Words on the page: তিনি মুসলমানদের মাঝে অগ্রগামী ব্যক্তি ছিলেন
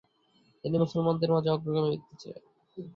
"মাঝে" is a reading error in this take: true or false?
false